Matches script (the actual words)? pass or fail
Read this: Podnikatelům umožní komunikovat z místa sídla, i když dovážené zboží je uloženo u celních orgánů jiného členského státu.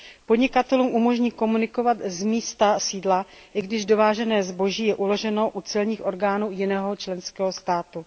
pass